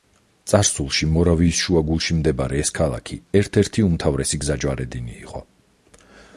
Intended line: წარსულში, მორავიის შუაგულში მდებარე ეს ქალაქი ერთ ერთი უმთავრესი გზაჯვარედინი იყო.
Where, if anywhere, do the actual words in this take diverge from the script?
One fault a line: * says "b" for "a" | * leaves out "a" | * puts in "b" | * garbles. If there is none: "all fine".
all fine